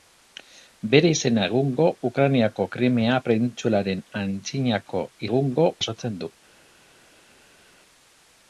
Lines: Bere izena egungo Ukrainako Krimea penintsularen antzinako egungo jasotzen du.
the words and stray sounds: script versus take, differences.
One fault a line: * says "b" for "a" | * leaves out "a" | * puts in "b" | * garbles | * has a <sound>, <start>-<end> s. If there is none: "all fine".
all fine